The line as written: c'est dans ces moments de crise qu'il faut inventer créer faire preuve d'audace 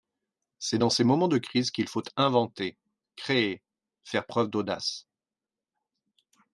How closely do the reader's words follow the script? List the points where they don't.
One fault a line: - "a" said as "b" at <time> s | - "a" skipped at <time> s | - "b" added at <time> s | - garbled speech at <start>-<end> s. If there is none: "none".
none